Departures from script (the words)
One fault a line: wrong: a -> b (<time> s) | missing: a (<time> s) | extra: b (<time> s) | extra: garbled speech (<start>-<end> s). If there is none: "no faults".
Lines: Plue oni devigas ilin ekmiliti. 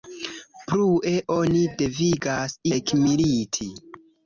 missing: ilin (2.6 s)